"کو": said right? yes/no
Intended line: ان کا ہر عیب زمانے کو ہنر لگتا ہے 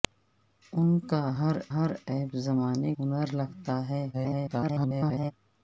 no